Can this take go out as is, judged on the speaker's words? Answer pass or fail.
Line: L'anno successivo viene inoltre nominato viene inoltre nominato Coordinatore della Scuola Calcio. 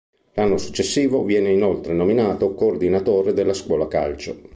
fail